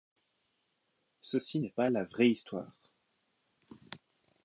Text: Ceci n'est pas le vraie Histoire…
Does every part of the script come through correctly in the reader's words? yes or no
no